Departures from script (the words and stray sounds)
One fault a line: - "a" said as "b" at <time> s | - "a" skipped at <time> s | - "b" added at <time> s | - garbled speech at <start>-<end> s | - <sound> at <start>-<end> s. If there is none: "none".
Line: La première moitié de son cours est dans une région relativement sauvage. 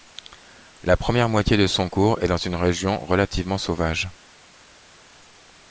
none